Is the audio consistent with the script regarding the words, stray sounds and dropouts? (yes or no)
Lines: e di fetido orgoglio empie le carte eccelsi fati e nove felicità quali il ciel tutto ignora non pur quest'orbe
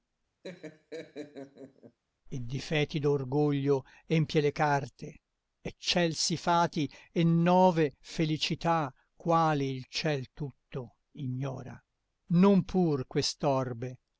no